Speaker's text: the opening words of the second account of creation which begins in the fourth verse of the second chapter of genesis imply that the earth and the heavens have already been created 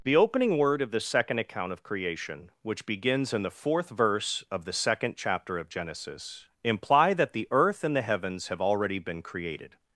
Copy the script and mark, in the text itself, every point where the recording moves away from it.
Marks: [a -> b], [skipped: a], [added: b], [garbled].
the opening [words -> word] of the second account of creation which begins in the fourth verse of the second chapter of genesis imply that the earth and the heavens have already been created